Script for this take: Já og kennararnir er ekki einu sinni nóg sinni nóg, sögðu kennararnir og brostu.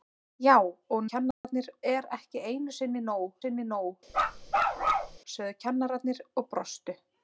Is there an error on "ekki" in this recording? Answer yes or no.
no